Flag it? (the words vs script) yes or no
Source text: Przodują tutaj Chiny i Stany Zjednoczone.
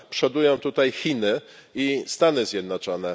no